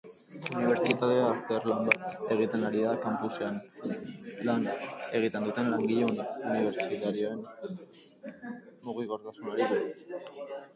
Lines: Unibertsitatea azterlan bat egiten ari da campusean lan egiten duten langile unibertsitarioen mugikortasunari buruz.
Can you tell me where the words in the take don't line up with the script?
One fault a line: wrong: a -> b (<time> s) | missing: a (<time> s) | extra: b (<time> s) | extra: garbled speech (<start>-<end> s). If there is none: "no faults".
no faults